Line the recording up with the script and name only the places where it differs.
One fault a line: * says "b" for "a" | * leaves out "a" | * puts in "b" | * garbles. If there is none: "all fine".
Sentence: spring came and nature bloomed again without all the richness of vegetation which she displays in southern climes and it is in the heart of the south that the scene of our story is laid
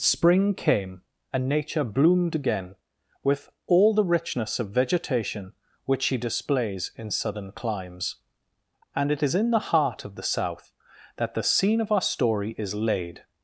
* says "with" for "without"